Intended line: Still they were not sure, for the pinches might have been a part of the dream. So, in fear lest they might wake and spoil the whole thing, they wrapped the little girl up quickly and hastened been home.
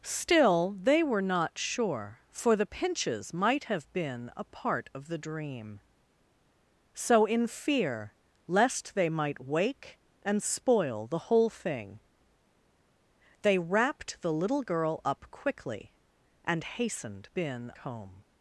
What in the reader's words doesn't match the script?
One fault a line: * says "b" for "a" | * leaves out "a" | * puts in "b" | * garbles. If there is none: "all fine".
all fine